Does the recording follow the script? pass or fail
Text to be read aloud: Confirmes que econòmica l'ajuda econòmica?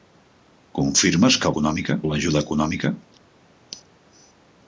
pass